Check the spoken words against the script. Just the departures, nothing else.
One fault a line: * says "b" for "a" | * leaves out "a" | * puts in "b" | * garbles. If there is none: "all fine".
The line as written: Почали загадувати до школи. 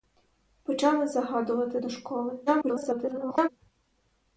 * garbles